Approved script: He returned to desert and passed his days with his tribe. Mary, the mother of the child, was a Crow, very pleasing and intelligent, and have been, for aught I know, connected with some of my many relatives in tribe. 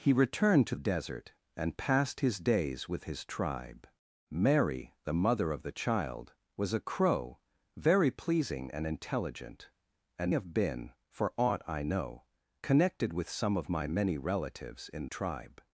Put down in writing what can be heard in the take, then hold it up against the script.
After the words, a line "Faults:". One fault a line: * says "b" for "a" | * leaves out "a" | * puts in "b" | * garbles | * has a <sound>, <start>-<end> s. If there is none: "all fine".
He returned to desert and passed his days with his tribe. Mary, the mother of the child, was a Crow, very pleasing and intelligent, and have been, for aught I know, connected with some of my many relatives in tribe.
Faults:
all fine